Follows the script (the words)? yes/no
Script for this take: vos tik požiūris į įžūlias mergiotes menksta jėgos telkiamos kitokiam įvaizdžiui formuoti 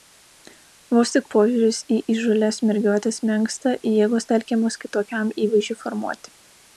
yes